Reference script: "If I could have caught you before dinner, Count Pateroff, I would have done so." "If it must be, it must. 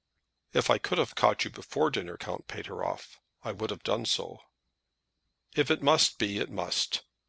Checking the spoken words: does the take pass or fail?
pass